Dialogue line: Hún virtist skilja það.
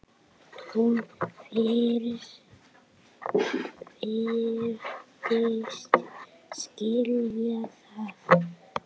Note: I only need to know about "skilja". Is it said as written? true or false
true